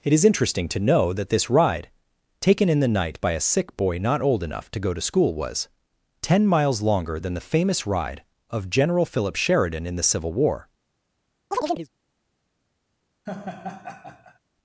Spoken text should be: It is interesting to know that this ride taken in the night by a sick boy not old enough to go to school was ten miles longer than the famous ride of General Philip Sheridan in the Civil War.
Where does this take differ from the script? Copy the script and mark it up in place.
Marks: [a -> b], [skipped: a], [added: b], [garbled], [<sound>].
It is interesting to know that this ride taken in the night by a sick boy not old enough to go to school was ten miles longer than the famous ride of General Philip Sheridan in the Civil War. [chirp] [laugh]